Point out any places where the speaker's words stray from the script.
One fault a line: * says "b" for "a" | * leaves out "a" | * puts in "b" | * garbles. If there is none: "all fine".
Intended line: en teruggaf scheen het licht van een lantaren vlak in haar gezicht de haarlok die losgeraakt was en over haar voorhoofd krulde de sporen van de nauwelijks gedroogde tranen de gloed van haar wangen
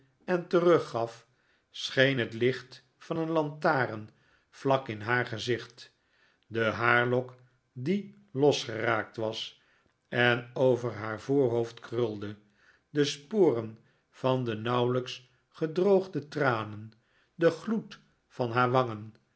all fine